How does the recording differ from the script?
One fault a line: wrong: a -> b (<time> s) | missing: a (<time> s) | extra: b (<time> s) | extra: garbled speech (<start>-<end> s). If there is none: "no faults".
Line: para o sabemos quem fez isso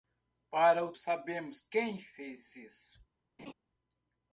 no faults